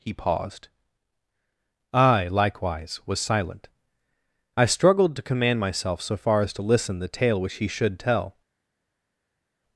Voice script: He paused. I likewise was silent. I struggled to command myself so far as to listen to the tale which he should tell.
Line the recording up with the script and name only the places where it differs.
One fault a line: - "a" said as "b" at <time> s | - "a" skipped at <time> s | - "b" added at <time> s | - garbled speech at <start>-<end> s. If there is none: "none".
- "to" skipped at 7.0 s